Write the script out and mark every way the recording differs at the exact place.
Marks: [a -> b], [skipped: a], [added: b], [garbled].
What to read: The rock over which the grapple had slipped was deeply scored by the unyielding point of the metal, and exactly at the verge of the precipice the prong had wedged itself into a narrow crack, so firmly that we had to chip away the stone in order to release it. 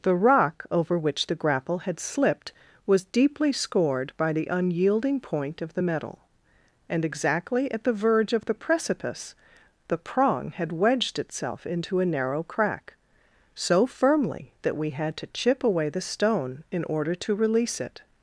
The rock over which the grapple had slipped was deeply scored by the unyielding point of the metal, and exactly at the verge of the precipice the prong had wedged itself into a narrow crack, so firmly that we had to chip away the stone in order to release it.